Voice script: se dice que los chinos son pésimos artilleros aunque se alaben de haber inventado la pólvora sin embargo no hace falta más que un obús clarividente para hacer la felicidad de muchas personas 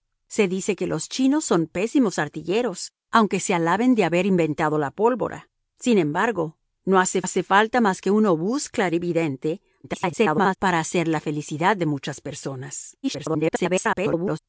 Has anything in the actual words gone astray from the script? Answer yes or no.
yes